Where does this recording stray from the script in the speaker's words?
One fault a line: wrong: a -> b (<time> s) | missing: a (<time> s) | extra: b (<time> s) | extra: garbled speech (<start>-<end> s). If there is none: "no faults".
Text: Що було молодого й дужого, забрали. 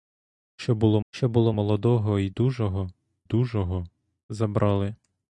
extra: що було (1.1 s)
extra: дужого (3.2 s)